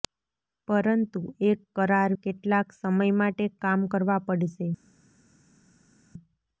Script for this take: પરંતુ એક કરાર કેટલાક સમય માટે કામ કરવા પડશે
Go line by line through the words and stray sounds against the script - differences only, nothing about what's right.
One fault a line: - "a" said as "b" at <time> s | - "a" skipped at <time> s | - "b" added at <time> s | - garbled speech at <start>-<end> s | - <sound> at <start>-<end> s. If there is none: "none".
none